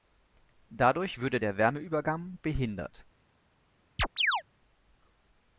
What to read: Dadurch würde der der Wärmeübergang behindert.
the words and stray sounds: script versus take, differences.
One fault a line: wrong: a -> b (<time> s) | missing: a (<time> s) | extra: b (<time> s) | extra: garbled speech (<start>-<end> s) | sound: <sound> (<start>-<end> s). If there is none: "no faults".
missing: der (1.6 s)
sound: chirp (4.0-4.4 s)